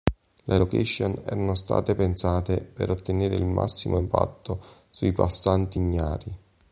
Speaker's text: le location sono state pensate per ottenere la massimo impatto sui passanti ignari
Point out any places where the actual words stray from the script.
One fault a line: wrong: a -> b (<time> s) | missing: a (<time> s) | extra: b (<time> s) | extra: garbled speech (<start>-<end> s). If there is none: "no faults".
wrong: sono -> erano (1.2 s)
wrong: la -> il (3.3 s)